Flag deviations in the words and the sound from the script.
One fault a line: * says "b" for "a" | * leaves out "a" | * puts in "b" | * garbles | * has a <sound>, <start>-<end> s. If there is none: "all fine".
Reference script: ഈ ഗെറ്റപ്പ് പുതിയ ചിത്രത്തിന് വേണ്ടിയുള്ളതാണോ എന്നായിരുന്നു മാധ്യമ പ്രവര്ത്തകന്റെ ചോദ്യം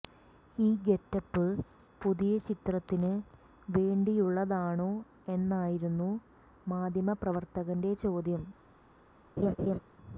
* has a laugh, 9.4-9.8 s